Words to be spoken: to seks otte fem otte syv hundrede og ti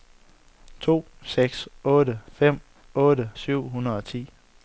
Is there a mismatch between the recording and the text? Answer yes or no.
no